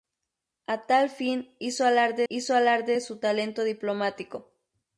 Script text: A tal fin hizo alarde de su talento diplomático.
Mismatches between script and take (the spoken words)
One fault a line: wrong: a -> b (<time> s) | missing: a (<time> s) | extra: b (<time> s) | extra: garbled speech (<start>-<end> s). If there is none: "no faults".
extra: hizo alarde (2.3 s)